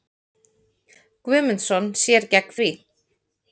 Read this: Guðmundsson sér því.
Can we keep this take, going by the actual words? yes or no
no